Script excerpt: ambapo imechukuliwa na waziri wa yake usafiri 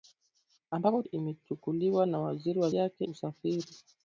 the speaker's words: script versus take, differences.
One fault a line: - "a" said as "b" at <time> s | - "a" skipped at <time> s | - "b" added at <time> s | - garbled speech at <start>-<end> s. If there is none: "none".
none